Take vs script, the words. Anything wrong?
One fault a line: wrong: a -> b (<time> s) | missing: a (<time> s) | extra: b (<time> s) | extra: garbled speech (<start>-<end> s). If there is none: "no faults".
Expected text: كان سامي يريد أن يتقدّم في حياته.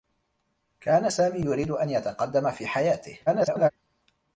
extra: garbled speech (3.3-3.7 s)